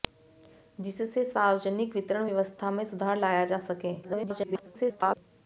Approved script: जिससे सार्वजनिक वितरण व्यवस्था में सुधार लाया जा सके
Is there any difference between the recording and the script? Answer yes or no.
yes